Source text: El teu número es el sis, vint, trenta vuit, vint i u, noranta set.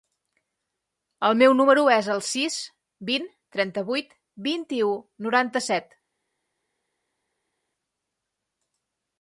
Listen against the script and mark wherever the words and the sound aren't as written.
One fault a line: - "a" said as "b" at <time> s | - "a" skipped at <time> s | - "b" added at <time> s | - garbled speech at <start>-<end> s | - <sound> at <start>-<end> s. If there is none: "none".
- "teu" said as "meu" at 1.4 s